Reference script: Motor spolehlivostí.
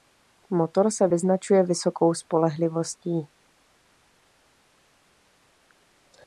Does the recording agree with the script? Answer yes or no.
no